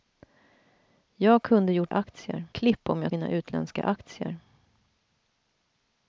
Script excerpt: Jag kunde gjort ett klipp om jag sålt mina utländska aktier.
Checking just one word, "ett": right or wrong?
wrong